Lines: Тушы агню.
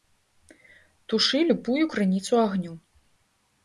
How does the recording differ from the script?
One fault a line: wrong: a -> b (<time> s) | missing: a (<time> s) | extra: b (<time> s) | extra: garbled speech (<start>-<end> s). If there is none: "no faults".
extra: любую крыніцу (1.5 s)